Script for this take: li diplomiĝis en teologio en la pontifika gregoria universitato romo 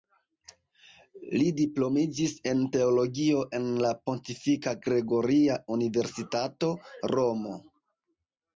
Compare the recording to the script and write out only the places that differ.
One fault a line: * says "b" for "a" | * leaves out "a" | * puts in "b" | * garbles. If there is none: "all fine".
all fine